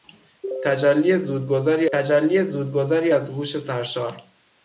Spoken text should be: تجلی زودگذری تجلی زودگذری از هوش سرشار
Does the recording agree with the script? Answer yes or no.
yes